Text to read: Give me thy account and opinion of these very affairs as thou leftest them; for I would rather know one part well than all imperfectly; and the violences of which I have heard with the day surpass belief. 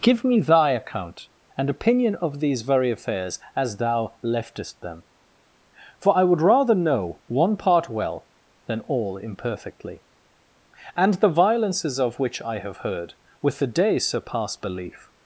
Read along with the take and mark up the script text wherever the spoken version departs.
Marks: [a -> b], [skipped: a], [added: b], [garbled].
Give me thy account and opinion of these very affairs as thou leftest them; for I would rather know one part well than all imperfectly; and the violences of which I have heard with the day surpass belief.